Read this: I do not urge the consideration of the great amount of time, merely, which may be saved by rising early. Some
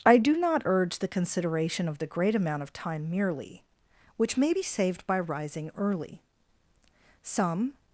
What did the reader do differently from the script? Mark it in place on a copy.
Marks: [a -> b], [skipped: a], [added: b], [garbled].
I do not urge the consideration of the great amount of time, merely, which may be saved by rising early. Some